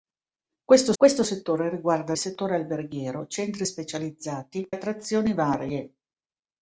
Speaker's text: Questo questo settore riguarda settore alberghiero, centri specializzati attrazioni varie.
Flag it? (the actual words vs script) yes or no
no